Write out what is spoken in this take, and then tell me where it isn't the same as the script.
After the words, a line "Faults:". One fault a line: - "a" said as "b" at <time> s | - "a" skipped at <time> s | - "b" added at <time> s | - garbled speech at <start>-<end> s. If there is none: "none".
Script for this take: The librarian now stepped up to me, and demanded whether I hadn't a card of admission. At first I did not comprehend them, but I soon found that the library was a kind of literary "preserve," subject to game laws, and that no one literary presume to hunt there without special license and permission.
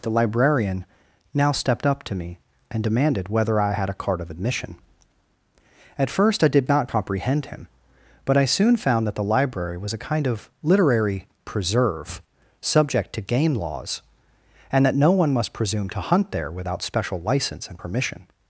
The librarian now stepped up to me, and demanded whether I had a card of admission. At first I did not comprehend him, but I soon found that the library was a kind of literary "preserve," subject to game laws, and that no one must presume to hunt there without special license and permission.
Faults:
- "hadn't" said as "had" at 3.7 s
- "them" said as "him" at 7.5 s
- "literary" said as "must" at 15.3 s